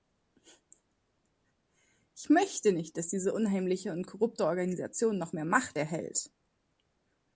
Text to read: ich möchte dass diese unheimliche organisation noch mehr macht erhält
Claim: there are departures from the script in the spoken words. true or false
true